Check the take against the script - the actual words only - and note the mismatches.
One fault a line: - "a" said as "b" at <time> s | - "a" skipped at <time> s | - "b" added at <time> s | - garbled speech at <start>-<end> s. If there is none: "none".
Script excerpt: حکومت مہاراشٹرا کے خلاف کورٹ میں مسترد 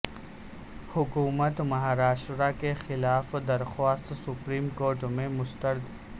- "درخواست سپریم" added at 3.5 s